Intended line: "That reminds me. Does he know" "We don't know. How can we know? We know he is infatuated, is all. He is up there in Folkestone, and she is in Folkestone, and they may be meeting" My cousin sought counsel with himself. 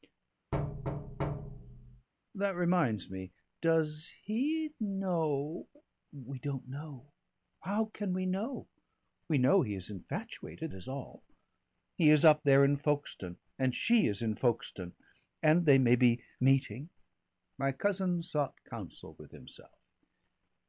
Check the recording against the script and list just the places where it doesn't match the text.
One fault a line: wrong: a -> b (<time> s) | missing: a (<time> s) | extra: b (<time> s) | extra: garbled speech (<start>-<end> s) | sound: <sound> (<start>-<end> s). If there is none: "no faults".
sound: thud (0.5-2.1 s)